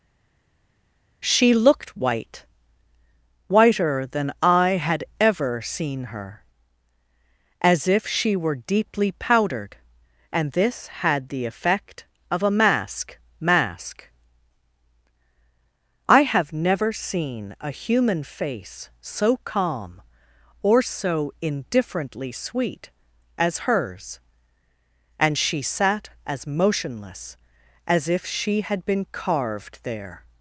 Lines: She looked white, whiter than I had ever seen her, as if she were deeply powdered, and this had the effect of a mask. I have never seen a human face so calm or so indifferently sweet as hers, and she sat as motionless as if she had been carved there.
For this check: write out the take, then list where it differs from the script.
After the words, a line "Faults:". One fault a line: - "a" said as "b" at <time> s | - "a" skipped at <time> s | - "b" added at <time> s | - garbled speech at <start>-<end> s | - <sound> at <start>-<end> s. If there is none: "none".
She looked white, whiter than I had ever seen her, as if she were deeply powdered, and this had the effect of a mask mask. I have never seen a human face so calm or so indifferently sweet as hers, and she sat as motionless as if she had been carved there.
Faults:
- "mask" added at 13.4 s